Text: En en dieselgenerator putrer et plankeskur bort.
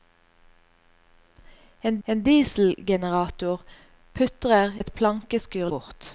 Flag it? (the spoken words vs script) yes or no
no